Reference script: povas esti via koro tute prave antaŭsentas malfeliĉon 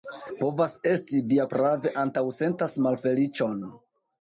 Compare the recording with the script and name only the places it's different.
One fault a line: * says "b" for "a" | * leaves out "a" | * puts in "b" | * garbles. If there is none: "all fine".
* leaves out "koro tute"